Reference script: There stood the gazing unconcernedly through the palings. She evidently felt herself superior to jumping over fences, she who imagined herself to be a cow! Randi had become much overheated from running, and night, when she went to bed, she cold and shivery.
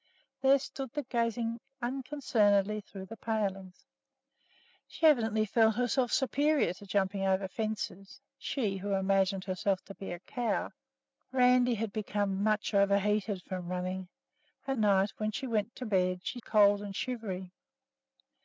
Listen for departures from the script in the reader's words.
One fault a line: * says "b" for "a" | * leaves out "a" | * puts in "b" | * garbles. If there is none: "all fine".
all fine